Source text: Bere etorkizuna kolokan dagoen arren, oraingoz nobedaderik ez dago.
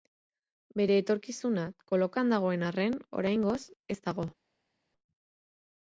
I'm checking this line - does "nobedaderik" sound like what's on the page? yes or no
no